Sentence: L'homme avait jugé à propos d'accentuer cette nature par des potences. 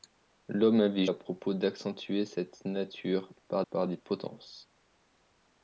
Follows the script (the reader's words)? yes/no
no